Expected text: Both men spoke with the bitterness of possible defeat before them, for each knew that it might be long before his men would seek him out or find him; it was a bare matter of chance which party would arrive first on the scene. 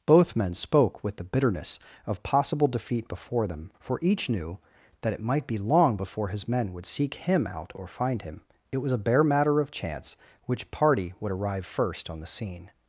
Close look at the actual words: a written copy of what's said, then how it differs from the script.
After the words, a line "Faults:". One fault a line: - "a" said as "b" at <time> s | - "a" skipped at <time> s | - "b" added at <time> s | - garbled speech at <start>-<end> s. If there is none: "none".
Both men spoke with the bitterness of possible defeat before them, for each knew that it might be long before his men would seek him out or find him; it was a bare matter of chance which party would arrive first on the scene.
Faults:
none